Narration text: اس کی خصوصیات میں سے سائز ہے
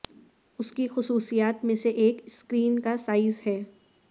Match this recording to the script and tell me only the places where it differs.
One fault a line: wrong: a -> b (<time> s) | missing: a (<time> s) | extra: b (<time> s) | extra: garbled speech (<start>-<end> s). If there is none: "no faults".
extra: ایک اسکرین کا (1.9 s)